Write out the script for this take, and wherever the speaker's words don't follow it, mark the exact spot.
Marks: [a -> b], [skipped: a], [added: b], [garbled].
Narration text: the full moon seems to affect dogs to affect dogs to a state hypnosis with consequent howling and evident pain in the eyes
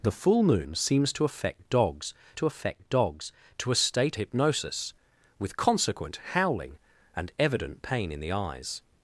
the full moon seems to affect dogs to affect dogs to a state hypnosis with consequent howling and evident pain in the eyes